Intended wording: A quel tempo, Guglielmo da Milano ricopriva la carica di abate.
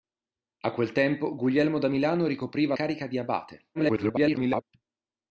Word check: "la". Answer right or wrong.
wrong